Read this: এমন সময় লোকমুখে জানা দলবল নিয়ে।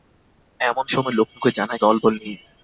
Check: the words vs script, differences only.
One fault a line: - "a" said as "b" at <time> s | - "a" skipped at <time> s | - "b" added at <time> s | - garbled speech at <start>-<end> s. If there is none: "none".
none